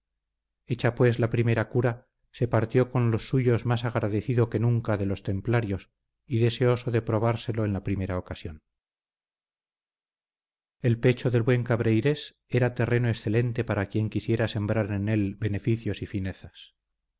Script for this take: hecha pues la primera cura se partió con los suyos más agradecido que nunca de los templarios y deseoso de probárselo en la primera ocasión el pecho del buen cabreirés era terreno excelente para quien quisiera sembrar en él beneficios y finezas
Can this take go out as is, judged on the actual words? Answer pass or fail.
pass